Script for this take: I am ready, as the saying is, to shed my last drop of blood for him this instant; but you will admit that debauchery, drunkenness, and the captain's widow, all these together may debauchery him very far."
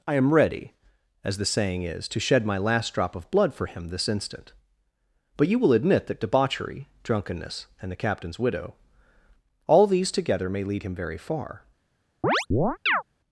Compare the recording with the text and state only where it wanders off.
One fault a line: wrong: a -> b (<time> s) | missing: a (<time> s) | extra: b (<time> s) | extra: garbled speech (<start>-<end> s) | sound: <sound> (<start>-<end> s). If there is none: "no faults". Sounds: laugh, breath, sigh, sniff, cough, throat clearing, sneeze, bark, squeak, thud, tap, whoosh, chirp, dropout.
wrong: debauchery -> lead (10.6 s)
sound: chirp (12.2-13.0 s)